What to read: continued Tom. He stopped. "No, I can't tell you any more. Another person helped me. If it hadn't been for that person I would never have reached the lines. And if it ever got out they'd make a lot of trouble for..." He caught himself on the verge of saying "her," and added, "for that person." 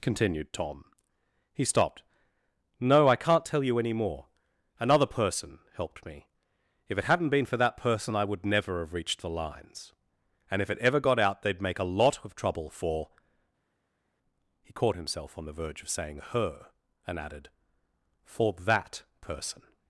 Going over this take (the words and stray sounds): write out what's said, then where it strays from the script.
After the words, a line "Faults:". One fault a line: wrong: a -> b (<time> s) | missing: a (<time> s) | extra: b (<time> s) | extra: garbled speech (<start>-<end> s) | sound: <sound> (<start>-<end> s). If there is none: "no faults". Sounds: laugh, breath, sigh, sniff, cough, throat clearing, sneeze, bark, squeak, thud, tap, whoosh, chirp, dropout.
continued Tom. He stopped. "No, I can't tell you any more. Another person helped me. If it hadn't been for that person I would never have reached the lines. And if it ever got out they'd make a lot of trouble for..." He caught himself on the verge of saying "her," and added, "for that person."
Faults:
no faults